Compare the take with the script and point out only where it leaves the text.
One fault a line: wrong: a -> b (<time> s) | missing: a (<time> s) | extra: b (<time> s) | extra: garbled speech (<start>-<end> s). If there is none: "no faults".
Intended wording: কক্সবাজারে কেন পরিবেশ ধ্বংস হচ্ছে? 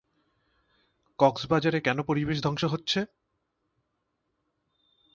no faults